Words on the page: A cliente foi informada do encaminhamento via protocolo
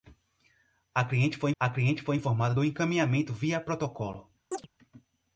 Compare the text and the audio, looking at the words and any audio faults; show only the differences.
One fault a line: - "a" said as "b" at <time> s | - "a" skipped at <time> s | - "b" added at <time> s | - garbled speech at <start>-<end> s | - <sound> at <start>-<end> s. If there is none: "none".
- "a cliente foi" added at 1.6 s
- chirp at 4.5-4.7 s